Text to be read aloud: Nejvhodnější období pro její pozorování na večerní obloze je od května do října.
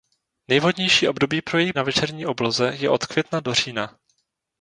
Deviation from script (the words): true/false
true